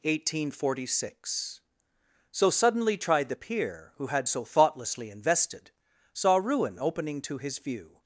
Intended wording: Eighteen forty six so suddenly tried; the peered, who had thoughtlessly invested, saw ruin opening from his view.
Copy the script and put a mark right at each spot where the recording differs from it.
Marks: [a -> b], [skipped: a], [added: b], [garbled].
Eighteen forty six so suddenly tried; the [peered, -> peer] who had [added: so] thoughtlessly invested, saw ruin opening [from -> to] his view.